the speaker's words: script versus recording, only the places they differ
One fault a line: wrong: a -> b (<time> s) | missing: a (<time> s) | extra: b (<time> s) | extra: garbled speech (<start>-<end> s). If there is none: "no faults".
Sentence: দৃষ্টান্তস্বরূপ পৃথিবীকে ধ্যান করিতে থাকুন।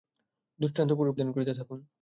missing: পৃথিবীকে (1.1 s)